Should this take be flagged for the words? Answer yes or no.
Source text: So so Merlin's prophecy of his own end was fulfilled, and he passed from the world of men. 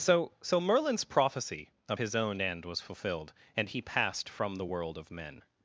no